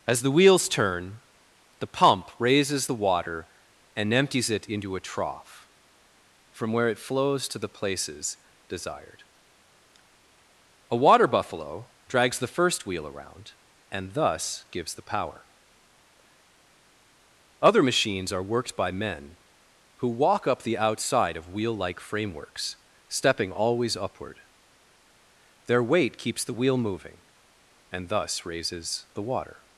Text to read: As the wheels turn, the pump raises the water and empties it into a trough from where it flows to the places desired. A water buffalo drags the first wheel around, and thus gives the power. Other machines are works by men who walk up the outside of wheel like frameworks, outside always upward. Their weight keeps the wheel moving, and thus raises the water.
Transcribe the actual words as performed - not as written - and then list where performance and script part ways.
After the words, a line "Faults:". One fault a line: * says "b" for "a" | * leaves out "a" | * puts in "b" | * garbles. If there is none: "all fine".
As the wheels turn, the pump raises the water and empties it into a trough from where it flows to the places desired. A water buffalo drags the first wheel around, and thus gives the power. Other machines are worked by men who walk up the outside of wheel like frameworks, stepping always upward. Their weight keeps the wheel moving, and thus raises the water.
Faults:
* says "worked" for "works"
* says "stepping" for "outside"